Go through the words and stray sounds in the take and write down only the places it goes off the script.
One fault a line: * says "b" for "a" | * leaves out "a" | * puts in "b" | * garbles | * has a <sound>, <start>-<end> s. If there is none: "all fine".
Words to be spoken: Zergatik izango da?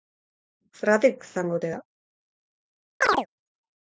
* puts in "ote"
* has a chirp, 3.0-3.3 s